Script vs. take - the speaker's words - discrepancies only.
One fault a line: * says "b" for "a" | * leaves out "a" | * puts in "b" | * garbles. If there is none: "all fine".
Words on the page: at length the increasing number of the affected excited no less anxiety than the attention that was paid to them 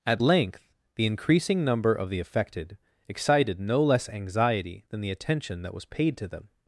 all fine